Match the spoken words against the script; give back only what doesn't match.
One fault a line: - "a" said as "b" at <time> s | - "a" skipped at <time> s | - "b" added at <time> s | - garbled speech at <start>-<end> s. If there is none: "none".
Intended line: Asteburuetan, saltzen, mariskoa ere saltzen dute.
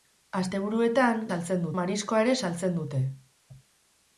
none